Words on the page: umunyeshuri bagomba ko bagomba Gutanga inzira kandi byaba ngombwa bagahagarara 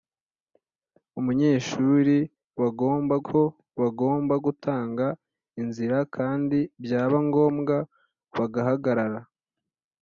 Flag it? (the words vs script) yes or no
no